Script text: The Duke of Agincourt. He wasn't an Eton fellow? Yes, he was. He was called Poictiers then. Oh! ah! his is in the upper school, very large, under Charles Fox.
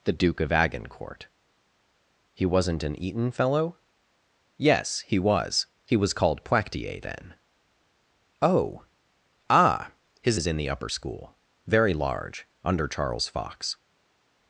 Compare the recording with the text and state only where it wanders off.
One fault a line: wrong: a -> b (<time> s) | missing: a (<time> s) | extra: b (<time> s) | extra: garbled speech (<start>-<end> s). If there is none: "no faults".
no faults